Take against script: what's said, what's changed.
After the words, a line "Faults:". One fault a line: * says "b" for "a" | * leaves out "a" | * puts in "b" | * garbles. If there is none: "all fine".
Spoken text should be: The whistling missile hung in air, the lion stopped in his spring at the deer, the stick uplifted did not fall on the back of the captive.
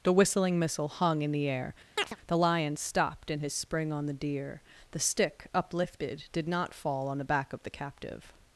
The whistling missile hung in the air, the lion stopped in his spring on the deer, the stick uplifted did not fall on the back of the captive.
Faults:
* puts in "the"
* says "on" for "at"